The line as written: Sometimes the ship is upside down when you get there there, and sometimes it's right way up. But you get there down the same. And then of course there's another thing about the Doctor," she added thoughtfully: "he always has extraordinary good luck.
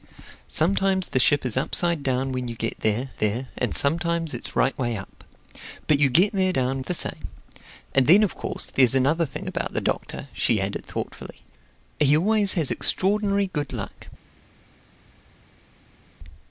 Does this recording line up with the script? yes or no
yes